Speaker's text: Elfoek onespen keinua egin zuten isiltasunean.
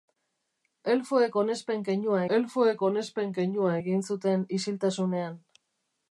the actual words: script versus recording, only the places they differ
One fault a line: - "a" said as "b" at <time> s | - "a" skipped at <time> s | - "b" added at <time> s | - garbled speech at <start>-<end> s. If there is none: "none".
- "elfoek onespen keinua" added at 2.4 s